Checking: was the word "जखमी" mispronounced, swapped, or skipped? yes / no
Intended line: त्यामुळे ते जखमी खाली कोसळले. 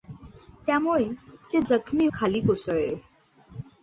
no